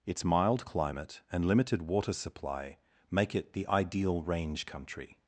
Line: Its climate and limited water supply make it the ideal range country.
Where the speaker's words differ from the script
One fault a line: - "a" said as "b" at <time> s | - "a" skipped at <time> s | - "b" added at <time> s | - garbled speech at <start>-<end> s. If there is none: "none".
- "mild" added at 0.2 s